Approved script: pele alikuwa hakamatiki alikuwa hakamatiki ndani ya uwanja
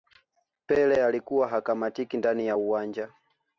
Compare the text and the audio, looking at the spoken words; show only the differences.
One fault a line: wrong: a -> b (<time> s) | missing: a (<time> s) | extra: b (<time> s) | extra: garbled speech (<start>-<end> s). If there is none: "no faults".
missing: alikuwa hakamatiki (2.2 s)